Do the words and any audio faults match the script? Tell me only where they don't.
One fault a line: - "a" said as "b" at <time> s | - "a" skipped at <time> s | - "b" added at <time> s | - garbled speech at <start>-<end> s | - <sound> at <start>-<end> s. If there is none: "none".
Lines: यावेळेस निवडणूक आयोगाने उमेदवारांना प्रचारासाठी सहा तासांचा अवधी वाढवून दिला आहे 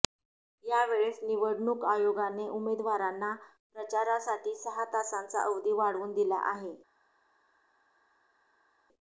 none